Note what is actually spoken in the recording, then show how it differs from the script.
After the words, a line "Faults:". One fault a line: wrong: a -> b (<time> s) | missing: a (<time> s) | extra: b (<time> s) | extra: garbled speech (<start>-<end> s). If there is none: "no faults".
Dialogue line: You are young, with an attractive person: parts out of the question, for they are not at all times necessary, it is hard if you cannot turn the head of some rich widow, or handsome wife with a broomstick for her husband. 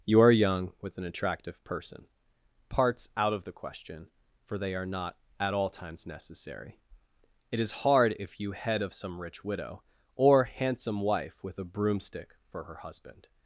You are young, with an attractive person: parts out of the question, for they are not at all times necessary, it is hard if you head of some rich widow, or handsome wife with a broomstick for her husband.
Faults:
missing: cannot turn the (8.5 s)